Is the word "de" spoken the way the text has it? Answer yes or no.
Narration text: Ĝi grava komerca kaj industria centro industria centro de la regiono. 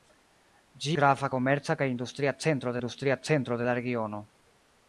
yes